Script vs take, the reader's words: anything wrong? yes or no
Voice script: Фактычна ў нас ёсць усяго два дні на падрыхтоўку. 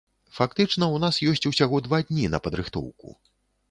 no